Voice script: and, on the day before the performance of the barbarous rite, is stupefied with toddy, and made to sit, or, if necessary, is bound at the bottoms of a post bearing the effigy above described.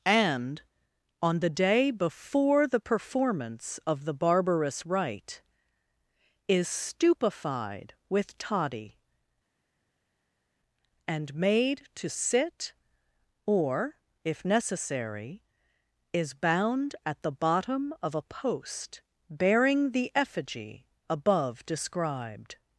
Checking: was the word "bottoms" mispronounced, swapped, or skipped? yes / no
yes